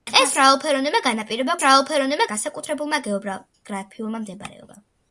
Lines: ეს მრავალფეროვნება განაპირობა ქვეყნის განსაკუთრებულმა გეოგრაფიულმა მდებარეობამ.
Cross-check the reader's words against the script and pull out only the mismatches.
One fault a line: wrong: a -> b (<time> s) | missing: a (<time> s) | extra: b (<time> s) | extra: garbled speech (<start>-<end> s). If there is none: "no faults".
wrong: ქვეყნის -> მრავალფეროვნება (1.6 s)